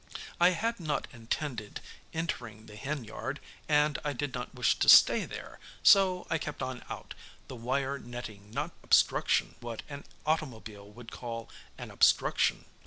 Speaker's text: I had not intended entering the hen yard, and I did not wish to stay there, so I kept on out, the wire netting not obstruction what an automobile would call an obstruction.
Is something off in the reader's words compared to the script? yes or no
no